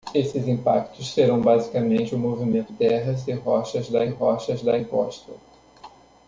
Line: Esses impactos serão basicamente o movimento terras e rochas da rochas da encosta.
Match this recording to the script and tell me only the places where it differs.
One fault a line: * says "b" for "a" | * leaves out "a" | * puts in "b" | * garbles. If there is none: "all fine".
all fine